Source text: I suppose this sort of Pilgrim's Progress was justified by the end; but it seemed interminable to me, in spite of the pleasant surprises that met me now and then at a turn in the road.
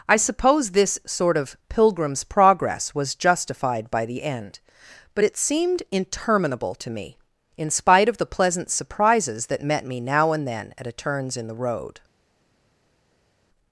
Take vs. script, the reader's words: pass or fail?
fail